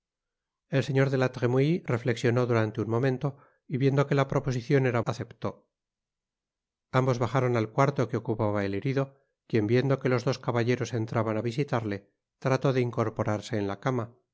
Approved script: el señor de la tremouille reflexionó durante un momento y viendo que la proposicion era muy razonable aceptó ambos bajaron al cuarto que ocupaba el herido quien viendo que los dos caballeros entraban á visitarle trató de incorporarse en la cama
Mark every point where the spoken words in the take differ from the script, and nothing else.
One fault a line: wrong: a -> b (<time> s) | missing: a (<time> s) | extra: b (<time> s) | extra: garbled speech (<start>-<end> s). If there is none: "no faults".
missing: muy razonable (5.0 s)